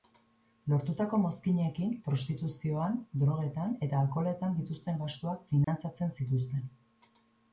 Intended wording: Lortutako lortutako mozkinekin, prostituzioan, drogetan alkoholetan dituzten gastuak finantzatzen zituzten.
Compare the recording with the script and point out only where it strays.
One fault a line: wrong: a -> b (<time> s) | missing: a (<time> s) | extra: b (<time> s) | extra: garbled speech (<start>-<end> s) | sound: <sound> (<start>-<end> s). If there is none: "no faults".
missing: lortutako (1.2 s)
extra: eta (3.9 s)
sound: dropout (5.6-5.7 s)